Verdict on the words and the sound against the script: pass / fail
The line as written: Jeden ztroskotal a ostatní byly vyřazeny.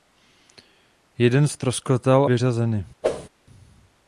fail